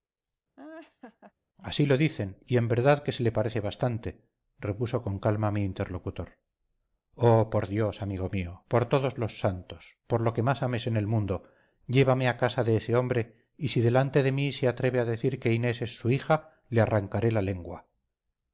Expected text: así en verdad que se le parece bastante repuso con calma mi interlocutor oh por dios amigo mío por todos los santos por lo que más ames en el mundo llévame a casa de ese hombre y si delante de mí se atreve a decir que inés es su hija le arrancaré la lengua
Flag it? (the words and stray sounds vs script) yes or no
yes